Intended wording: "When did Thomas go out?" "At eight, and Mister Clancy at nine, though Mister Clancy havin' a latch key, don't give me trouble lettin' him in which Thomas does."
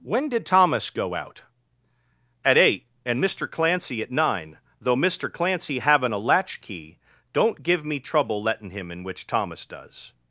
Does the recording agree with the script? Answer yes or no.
yes